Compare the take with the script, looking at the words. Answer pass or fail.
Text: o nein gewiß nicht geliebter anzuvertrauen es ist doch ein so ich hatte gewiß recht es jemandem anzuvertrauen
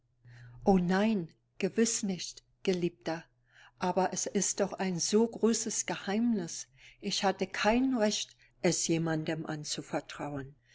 fail